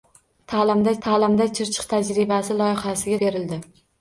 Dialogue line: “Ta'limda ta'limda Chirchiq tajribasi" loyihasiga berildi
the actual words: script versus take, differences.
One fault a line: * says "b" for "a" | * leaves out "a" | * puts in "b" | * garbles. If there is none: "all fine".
all fine